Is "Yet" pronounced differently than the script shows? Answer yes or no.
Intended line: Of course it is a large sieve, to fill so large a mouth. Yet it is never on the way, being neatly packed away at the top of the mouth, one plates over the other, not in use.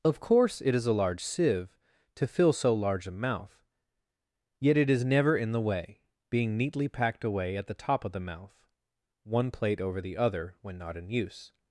no